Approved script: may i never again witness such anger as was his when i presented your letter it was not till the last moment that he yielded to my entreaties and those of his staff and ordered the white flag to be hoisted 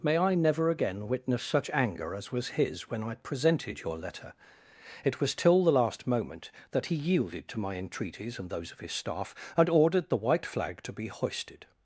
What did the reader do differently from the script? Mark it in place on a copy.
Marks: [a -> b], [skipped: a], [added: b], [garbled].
may i never again witness such anger as was his when i presented your letter it was [skipped: not] till the last moment that he yielded to my entreaties and those of his staff and ordered the white flag to be hoisted